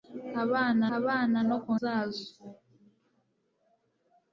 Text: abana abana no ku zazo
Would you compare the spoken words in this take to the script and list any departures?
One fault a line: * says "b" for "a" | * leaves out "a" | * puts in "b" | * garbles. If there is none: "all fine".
all fine